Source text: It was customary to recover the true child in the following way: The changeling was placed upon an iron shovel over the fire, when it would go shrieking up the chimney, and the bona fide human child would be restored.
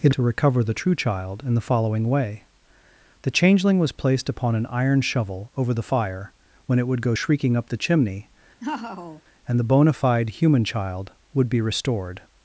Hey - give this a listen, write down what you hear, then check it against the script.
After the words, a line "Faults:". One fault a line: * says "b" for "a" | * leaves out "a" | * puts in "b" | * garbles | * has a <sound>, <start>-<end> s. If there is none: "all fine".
It to recover the true child in the following way: The changeling was placed upon an iron shovel over the fire, when it would go shrieking up the chimney, and the bona fide human child would be restored.
Faults:
* leaves out "was customary"
* has a laugh, 8.6-9.2 s